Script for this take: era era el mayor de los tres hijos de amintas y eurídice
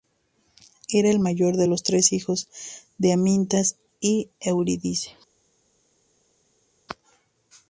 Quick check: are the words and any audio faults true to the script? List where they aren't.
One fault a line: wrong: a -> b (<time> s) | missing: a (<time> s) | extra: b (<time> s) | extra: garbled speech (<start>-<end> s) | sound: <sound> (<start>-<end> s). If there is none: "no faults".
missing: era (1.1 s)